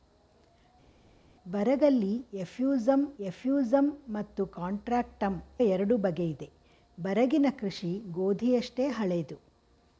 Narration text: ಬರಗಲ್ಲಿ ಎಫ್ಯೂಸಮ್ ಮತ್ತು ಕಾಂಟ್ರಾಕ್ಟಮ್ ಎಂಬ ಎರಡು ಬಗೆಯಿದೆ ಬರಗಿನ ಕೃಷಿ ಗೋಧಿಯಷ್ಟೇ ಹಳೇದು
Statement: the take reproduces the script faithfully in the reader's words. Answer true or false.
false